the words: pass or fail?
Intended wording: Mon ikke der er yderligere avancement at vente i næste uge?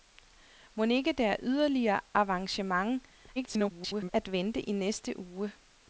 fail